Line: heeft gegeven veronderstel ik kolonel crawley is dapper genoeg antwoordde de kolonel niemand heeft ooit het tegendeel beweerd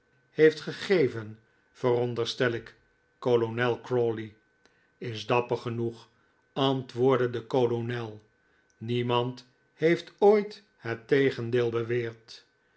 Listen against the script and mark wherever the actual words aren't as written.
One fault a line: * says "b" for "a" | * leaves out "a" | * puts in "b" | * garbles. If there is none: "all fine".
all fine